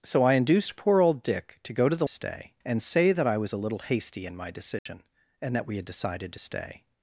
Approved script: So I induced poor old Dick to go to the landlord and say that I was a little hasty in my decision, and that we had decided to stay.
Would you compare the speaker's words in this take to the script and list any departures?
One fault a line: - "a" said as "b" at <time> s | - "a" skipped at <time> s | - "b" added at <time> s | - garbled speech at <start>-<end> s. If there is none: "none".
- "landlord" said as "stay" at 2.1 s